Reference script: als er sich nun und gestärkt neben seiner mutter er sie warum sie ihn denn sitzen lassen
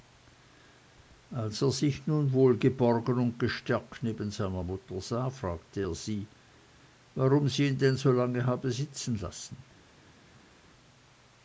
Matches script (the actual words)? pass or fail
fail